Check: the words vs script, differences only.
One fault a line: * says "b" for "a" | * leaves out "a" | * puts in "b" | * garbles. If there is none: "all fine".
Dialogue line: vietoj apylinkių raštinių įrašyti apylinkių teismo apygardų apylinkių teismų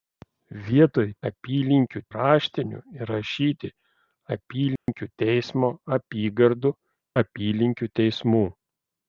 all fine